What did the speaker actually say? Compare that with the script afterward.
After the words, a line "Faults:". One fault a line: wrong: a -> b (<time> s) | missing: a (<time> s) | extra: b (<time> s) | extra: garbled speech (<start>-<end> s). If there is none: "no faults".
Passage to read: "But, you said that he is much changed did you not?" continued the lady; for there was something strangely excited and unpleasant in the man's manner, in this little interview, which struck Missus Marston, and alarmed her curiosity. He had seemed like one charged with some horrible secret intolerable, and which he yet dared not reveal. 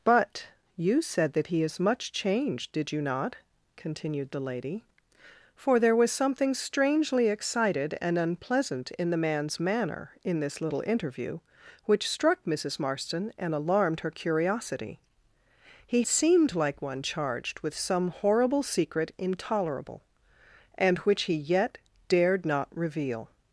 "But, you said that he is much changed did you not?" continued the lady; for there was something strangely excited and unpleasant in the man's manner, in this little interview, which struck Missus Marston, and alarmed her curiosity. He seemed like one charged with some horrible secret intolerable, and which he yet dared not reveal.
Faults:
missing: had (16.0 s)